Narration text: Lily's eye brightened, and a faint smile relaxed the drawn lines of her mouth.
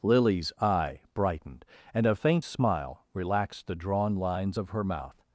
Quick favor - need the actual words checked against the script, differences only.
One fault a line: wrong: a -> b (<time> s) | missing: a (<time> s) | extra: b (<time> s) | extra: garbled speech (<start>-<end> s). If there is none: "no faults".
no faults